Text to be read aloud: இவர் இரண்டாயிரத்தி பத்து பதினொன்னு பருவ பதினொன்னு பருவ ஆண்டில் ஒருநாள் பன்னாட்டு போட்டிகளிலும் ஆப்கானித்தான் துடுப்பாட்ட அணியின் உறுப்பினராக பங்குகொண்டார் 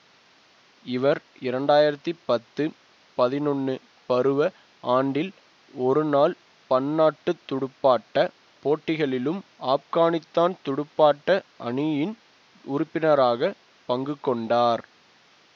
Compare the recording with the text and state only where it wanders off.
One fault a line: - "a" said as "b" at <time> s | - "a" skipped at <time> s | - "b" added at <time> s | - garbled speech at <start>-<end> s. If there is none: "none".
- "பதினொன்னு பருவ" skipped at 4.5 s
- "துடுப்பாட்ட" added at 7.5 s